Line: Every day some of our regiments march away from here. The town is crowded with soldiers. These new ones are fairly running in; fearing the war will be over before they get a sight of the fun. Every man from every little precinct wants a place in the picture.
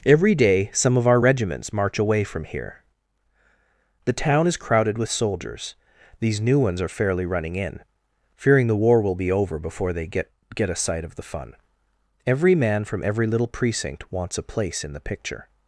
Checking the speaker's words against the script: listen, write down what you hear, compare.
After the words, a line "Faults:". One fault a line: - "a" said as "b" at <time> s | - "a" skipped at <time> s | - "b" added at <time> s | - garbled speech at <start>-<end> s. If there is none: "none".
Every day some of our regiments march away from here. The town is crowded with soldiers. These new ones are fairly running in; fearing the war will be over before they get get a sight of the fun. Every man from every little precinct wants a place in the picture.
Faults:
- "get" added at 10.5 s